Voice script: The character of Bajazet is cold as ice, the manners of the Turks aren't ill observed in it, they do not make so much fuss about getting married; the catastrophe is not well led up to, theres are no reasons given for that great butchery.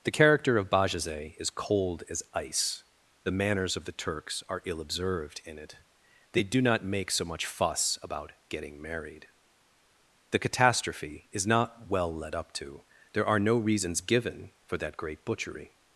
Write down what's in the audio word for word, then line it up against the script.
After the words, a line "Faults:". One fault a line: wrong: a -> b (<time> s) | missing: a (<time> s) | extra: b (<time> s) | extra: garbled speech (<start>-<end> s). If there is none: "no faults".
The character of Bajazet is cold as ice, the manners of the Turks are ill observed in it, they do not make so much fuss about getting married; the catastrophe is not well led up to, there are no reasons given for that great butchery.
Faults:
wrong: aren't -> are (4.5 s)
wrong: theres -> there (13.1 s)